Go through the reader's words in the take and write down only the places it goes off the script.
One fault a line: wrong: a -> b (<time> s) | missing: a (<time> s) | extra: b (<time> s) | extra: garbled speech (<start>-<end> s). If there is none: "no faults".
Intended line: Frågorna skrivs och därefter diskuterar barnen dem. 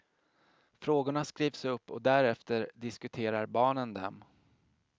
extra: upp (1.6 s)